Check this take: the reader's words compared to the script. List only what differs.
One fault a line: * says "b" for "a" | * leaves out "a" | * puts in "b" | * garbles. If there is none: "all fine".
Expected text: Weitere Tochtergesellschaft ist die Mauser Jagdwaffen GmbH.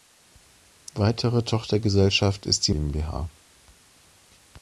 * leaves out "Mauser Jagdwaffen"